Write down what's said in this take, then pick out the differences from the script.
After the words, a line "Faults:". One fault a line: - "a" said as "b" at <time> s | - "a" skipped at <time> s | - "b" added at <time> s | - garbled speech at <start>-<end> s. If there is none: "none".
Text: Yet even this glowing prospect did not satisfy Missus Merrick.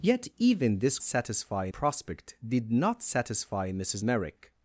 Yet even this satisfy prospect did not satisfy Missus Merrick.
Faults:
- "glowing" said as "satisfy" at 1.0 s